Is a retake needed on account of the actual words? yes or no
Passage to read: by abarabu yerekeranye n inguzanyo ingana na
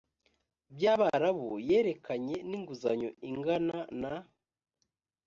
no